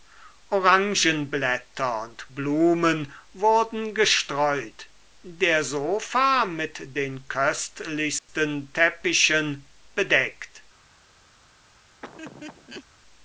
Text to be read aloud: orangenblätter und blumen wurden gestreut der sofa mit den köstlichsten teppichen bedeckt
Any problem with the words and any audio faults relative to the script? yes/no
yes